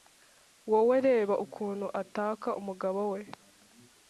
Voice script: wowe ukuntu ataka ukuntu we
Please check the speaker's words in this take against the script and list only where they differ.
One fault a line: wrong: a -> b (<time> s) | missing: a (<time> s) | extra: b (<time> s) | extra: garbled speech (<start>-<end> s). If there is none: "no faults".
extra: reba (1.1 s)
wrong: ukuntu -> umugabo (2.6 s)